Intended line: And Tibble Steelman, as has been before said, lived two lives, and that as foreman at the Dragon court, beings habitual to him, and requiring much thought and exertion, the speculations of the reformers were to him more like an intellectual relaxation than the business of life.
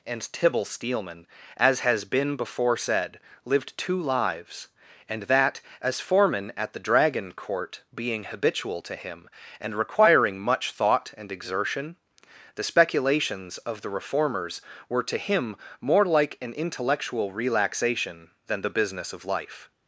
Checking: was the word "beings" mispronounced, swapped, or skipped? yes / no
yes